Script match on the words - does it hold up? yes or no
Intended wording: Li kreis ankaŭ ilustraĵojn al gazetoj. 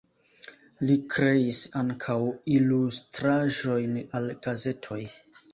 yes